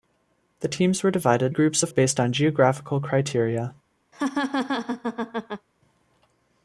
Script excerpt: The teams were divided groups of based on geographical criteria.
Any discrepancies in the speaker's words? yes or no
no